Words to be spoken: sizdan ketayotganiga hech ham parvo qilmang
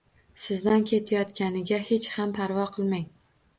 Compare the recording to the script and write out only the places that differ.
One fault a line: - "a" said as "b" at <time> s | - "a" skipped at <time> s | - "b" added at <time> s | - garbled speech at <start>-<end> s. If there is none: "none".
none